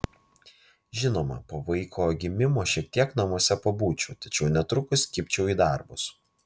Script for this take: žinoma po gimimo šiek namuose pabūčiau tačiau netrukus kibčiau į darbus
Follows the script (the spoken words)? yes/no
no